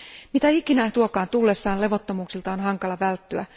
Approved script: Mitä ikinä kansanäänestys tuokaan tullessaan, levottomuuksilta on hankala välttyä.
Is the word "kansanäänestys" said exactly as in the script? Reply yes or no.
no